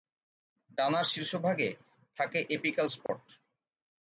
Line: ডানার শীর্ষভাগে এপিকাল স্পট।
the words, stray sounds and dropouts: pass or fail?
fail